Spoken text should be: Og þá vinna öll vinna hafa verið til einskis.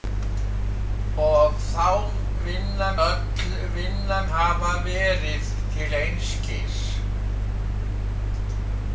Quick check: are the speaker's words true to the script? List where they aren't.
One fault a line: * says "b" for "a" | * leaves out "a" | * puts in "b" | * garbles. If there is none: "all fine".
all fine